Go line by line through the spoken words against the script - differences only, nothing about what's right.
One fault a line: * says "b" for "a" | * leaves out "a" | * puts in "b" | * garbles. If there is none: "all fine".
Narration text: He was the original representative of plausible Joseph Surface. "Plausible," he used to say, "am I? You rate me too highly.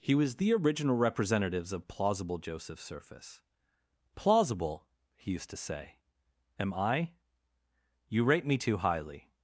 * says "representatives" for "representative"